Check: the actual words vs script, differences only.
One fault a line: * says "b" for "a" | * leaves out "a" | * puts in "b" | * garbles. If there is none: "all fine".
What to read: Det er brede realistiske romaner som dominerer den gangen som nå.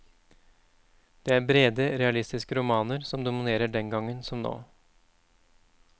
all fine